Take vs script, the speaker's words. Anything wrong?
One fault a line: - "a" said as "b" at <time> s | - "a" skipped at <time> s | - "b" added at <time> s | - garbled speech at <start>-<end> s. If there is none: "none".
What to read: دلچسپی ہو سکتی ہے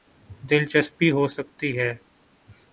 none